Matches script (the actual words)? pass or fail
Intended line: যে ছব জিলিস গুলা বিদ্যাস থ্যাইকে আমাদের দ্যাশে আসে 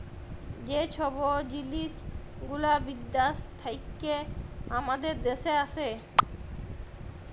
pass